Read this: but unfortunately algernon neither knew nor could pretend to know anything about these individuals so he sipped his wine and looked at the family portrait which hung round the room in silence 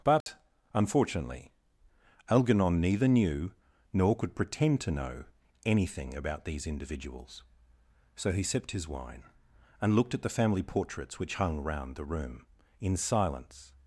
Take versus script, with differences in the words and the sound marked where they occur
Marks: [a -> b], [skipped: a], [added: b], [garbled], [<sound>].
but [dropout] unfortunately algernon neither knew nor could pretend to know anything about these individuals so he sipped his wine and looked at the family [portrait -> portraits] which hung round the room in silence